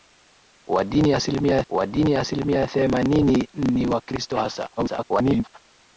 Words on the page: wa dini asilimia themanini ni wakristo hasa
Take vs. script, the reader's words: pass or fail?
fail